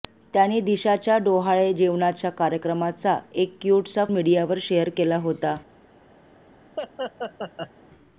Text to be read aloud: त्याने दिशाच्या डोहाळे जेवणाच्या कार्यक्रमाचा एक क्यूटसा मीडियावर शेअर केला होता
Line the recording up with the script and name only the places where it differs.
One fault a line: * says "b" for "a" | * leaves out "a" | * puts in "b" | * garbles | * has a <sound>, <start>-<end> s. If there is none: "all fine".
* has a laugh, 6.8-7.7 s